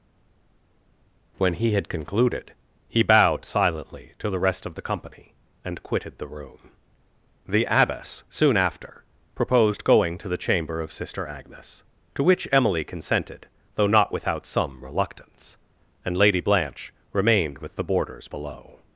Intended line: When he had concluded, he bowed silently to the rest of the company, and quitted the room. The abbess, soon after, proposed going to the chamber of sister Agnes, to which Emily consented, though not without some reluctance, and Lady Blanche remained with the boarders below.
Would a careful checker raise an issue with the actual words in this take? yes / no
no